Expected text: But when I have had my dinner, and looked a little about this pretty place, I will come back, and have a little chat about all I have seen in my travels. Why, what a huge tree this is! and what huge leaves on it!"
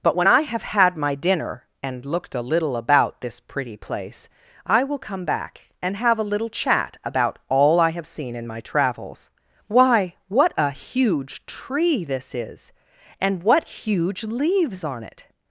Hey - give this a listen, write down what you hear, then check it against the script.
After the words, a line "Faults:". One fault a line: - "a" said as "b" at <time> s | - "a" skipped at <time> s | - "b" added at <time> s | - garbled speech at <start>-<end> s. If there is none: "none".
But when I have had my dinner, and looked a little about this pretty place, I will come back, and have a little chat about all I have seen in my travels. Why, what a huge tree this is! and what huge leaves on it!"
Faults:
none